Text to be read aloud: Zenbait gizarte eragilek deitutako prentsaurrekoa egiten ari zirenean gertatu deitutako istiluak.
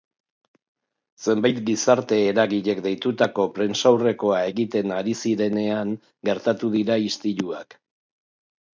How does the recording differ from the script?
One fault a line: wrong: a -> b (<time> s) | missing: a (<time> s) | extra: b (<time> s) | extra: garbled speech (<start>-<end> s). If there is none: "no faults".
wrong: deitutako -> dira (6.8 s)